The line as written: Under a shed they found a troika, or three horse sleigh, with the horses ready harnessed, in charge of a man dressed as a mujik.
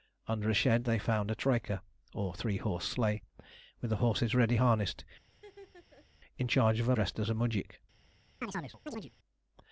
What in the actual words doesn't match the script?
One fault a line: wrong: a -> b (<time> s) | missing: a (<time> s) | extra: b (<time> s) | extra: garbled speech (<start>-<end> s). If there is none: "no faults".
missing: man (6.9 s)